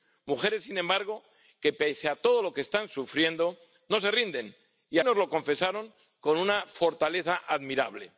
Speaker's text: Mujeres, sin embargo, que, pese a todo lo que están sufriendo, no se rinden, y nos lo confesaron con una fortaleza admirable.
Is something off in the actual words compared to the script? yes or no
no